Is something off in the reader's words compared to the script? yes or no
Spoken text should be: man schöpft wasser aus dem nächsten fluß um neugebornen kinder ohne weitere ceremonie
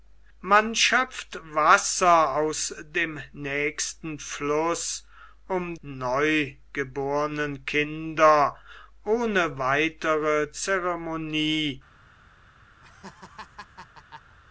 no